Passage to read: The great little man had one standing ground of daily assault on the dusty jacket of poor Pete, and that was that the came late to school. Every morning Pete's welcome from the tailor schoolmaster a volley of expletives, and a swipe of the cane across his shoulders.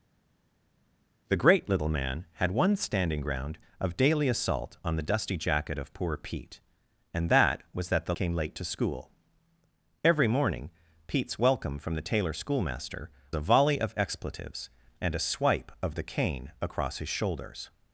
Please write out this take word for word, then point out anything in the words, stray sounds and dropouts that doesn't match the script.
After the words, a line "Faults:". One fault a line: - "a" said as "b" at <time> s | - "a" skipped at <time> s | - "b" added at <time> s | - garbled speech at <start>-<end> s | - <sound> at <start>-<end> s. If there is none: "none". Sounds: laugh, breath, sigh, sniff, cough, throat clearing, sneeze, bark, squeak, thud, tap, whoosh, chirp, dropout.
The great little man had one standing ground of daily assault on the dusty jacket of poor Pete, and that was that the came late to school. Every morning Pete's welcome from the tailor schoolmaster a volley of expletives, and a swipe of the cane across his shoulders.
Faults:
none